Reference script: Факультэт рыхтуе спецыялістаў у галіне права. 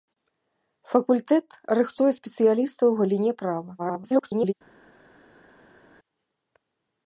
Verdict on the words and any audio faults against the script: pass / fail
fail